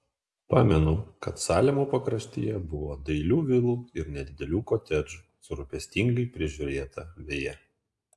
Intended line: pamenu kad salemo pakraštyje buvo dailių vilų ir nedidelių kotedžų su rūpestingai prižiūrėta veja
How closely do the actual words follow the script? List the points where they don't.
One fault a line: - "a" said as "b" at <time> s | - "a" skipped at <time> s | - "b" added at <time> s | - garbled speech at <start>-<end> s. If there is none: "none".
none